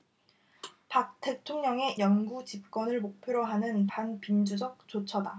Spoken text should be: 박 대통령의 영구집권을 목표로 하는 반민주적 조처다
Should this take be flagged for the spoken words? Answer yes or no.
no